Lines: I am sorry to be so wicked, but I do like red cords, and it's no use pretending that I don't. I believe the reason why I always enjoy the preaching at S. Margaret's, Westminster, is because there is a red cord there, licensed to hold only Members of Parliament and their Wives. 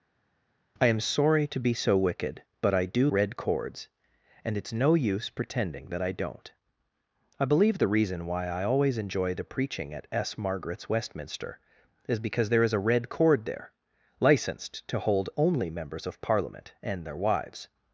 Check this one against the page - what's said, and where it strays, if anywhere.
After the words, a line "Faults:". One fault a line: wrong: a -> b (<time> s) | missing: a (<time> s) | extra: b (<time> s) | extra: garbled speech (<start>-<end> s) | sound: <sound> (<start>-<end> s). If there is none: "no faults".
I am sorry to be so wicked, but I do red cords, and it's no use pretending that I don't. I believe the reason why I always enjoy the preaching at S. Margaret's, Westminster, is because there is a red cord there, licensed to hold only Members of Parliament and their Wives.
Faults:
missing: like (3.1 s)